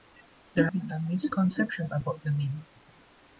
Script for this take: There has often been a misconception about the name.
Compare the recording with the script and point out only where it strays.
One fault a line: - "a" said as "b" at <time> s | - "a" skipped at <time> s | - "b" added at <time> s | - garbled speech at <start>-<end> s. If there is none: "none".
- "has often" skipped at 0.7 s